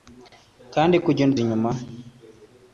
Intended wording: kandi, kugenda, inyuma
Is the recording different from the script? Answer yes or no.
no